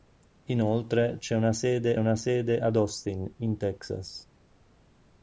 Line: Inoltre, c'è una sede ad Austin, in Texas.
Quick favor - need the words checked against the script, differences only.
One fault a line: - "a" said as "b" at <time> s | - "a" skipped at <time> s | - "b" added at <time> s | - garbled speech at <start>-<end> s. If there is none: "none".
- "una sede" added at 2.0 s